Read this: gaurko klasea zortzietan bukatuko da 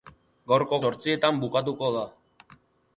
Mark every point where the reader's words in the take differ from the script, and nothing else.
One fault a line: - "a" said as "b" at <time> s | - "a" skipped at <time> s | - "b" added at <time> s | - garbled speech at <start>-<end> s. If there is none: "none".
- "klasea" skipped at 0.8 s